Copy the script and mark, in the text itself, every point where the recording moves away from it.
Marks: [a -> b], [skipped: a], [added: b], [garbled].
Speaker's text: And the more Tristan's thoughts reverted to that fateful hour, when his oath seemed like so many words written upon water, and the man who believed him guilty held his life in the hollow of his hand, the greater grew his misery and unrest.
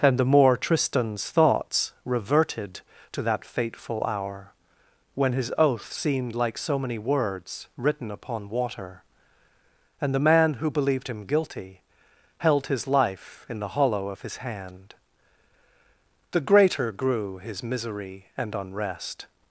And the more Tristan's thoughts reverted to that fateful hour, when his oath seemed like so many words written upon water, and the man who believed him guilty held his life in the hollow of his hand, the greater grew his misery and unrest.